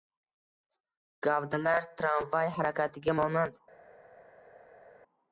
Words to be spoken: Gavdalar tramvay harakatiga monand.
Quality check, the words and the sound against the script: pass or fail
pass